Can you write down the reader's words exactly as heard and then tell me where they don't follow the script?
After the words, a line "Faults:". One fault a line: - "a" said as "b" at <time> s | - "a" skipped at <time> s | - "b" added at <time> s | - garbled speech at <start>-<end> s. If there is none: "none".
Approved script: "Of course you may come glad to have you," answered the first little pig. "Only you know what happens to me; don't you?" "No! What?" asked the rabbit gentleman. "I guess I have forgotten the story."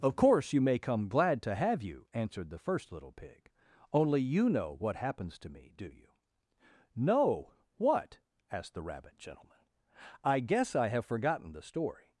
"Of course you may come glad to have you," answered the first little pig. "Only you know what happens to me; do you?" "No! What?" asked the rabbit gentleman. "I guess I have forgotten the story."
Faults:
- "don't" said as "do" at 5.8 s